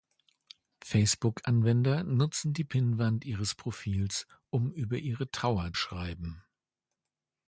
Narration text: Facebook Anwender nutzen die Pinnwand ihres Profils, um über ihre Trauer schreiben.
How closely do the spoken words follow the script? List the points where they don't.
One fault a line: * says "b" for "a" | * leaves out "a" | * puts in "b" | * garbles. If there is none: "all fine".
all fine